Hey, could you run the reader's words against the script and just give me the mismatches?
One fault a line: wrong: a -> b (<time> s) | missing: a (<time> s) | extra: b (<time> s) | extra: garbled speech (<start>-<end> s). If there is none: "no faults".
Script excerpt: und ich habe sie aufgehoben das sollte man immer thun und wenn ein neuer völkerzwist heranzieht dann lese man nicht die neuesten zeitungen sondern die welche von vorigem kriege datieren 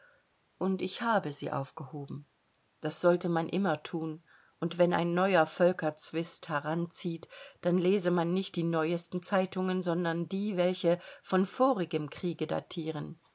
no faults